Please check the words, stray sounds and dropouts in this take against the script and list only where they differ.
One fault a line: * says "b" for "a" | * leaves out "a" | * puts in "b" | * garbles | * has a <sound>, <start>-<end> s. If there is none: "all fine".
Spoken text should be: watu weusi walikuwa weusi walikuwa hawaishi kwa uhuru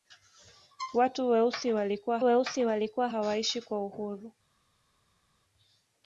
all fine